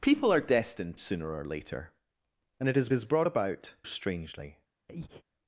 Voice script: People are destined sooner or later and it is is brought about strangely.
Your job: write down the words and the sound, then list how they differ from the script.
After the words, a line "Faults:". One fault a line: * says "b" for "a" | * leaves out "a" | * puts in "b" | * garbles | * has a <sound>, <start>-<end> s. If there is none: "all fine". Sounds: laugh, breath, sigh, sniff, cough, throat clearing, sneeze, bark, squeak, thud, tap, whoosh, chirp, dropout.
People are destined sooner or later and it is is brought about strangely.
Faults:
* has a breath, 4.9-5.2 s